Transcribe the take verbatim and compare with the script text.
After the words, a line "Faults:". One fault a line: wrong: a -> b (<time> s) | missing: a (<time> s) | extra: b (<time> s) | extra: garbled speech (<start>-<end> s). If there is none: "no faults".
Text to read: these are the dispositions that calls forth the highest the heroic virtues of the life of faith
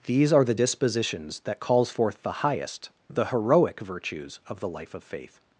these are the dispositions that calls forth the highest the heroic virtues of the life of faith
Faults:
no faults